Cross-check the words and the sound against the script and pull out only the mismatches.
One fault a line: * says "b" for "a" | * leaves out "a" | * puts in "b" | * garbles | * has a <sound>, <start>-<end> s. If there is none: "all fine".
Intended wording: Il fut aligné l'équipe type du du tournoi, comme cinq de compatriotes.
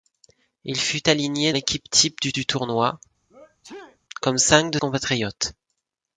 * has a sneeze, 3.3-4.0 s